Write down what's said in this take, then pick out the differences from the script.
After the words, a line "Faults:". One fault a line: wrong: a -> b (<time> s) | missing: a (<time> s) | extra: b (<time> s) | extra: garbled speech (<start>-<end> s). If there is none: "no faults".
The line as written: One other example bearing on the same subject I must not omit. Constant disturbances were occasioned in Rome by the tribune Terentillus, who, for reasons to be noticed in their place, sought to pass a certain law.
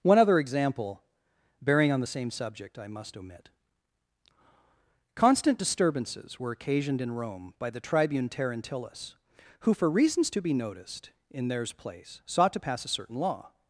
One other example bearing on the same subject I must omit. Constant disturbances were occasioned in Rome by the tribune Terentillus, who, for reasons to be noticed in theirs place, sought to pass a certain law.
Faults:
missing: not (3.2 s)
wrong: their -> theirs (11.5 s)